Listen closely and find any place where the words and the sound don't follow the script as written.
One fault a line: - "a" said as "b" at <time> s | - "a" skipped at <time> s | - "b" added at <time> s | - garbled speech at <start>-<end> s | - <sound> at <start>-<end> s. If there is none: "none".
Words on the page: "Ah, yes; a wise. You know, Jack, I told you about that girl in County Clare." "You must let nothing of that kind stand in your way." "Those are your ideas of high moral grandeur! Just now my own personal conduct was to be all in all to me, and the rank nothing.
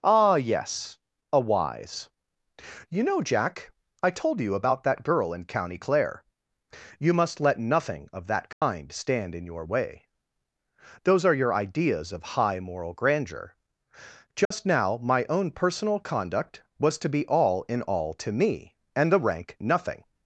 - dropout at 8.5-8.6 s
- dropout at 14.4-14.5 s